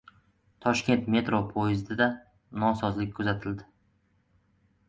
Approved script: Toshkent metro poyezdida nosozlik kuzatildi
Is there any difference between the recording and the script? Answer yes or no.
no